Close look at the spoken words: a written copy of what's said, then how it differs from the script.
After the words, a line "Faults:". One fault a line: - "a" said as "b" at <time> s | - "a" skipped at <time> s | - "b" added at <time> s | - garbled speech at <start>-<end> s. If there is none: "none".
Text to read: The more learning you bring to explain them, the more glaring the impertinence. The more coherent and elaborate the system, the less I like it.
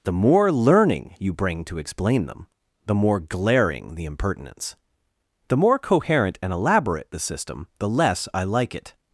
The more learning you bring to explain them, the more glaring the impertinence. The more coherent and elaborate the system, the less I like it.
Faults:
none